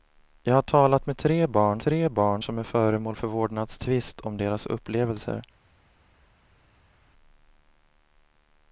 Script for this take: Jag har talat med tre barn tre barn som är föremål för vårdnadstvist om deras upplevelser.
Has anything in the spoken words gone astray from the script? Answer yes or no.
no